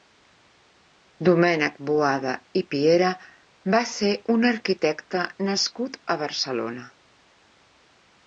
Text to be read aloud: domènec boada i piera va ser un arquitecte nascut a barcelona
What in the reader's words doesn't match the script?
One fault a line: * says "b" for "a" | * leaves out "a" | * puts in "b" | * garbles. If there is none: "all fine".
all fine